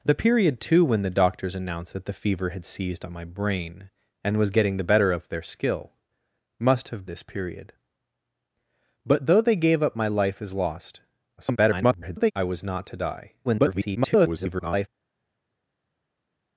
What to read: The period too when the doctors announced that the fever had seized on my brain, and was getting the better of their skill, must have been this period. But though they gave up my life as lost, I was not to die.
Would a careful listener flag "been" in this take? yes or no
yes